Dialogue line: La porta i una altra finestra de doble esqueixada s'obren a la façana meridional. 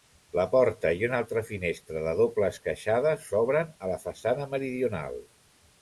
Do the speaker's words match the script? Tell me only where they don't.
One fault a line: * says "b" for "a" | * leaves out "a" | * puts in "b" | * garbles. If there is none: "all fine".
all fine